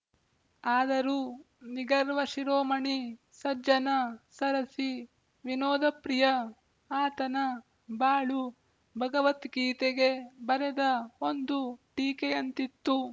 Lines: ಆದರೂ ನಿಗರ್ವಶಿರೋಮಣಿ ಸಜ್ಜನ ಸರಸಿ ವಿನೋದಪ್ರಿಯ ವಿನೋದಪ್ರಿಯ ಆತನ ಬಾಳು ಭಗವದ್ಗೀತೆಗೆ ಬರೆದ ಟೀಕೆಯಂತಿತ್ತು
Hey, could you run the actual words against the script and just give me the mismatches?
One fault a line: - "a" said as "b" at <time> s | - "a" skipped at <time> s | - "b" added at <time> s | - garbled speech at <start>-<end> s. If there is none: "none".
- "ವಿನೋದಪ್ರಿಯ" skipped at 6.2 s
- "ಒಂದು" added at 11.2 s